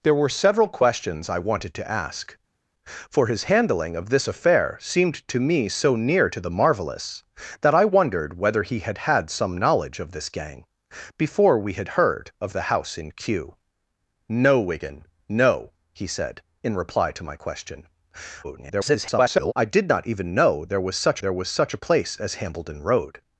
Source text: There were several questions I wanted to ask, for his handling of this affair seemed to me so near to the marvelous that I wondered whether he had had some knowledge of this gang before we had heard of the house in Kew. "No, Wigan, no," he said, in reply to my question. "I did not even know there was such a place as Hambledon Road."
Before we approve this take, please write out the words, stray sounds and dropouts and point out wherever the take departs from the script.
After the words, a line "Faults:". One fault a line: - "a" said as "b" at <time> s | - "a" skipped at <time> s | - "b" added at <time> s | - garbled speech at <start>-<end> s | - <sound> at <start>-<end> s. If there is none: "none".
There were several questions I wanted to ask, for his handling of this affair seemed to me so near to the marvelous that I wondered whether he had had some knowledge of this gang before we had heard of the house in Kew. "No, Wigan, no," he said, in reply to my question. [garbled] "I did not even know there was such there was such a place as Hambledon Road."
Faults:
- garbled speech at 18.4-19.5 s
- "there was such" added at 21.2 s